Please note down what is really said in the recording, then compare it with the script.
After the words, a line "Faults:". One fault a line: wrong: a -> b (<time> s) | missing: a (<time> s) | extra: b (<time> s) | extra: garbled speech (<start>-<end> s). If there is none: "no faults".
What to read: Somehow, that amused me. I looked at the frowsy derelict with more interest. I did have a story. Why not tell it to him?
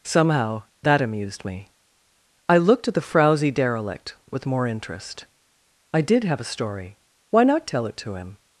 Somehow, that amused me. I looked at the frowsy derelict with more interest. I did have a story. Why not tell it to him?
Faults:
no faults